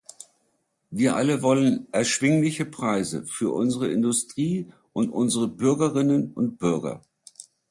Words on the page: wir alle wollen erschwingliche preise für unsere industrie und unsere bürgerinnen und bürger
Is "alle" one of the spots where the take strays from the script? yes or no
no